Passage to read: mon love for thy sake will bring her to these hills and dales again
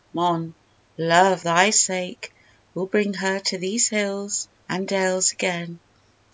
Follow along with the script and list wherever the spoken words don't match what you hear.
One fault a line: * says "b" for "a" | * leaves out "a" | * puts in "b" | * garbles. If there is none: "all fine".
* leaves out "for"